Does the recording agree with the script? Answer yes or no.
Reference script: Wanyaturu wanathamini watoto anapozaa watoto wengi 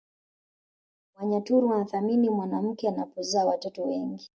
no